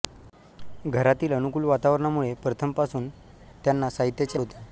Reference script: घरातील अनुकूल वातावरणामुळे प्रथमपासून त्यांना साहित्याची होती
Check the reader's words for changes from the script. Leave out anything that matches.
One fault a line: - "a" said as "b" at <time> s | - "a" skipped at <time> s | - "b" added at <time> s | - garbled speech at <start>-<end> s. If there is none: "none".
none